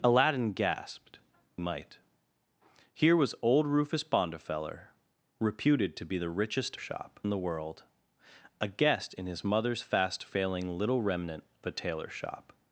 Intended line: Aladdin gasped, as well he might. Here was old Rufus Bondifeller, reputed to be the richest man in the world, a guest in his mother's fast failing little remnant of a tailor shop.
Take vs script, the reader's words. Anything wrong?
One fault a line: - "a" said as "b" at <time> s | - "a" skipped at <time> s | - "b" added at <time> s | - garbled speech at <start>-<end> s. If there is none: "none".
- "as well he" skipped at 1.2 s
- "man" said as "shop" at 6.8 s
- "of" skipped at 11.4 s